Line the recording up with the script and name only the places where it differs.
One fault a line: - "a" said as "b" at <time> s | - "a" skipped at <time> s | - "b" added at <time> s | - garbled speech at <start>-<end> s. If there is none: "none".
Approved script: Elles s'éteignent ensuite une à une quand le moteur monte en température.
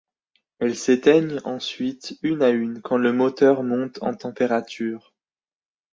none